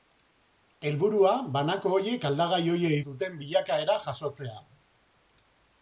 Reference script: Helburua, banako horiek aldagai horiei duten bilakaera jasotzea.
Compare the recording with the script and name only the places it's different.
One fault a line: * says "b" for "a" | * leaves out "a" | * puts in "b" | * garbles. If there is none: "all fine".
all fine